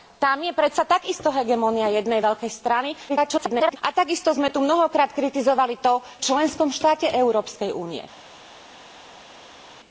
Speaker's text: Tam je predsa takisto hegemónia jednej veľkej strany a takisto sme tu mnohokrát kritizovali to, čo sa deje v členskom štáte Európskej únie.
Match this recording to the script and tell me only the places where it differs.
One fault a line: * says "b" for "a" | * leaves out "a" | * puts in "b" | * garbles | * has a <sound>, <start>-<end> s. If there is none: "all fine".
* garbles
* leaves out "čo sa deje"